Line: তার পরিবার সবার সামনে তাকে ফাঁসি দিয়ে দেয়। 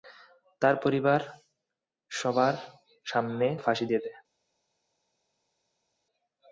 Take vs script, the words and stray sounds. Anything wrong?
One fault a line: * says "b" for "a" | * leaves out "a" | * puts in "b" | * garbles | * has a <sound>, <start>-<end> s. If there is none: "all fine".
* leaves out "তাকে"